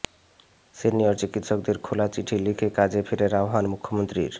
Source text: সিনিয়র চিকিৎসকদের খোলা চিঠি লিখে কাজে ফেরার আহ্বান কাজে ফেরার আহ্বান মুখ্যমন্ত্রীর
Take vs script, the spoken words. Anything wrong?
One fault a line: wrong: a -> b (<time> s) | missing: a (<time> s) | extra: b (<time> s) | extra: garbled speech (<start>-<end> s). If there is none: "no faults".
missing: কাজে ফেরার আহ্বান (3.6 s)